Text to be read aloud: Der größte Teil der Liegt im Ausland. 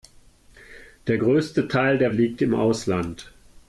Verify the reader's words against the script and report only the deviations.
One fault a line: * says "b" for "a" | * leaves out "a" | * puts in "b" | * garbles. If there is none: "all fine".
all fine